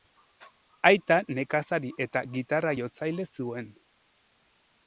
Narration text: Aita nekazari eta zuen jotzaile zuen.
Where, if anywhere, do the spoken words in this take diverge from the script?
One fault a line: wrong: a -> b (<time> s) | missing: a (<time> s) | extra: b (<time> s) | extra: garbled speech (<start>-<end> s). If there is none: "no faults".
wrong: zuen -> gitarra (2.4 s)